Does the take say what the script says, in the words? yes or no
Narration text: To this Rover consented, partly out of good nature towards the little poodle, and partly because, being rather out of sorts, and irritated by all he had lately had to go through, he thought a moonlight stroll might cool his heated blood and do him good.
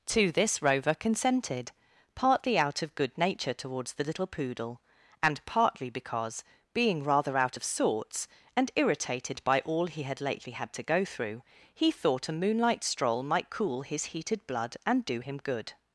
yes